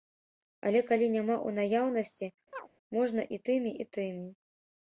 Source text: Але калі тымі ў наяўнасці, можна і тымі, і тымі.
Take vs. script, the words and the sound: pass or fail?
fail